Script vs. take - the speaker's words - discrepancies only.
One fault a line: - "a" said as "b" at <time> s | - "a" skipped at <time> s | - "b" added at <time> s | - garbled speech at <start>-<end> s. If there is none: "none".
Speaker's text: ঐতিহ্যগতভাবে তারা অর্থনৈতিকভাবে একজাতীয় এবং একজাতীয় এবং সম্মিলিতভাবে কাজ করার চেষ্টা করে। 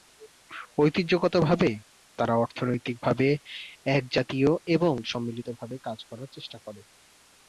- "একজাতীয় এবং" skipped at 4.9 s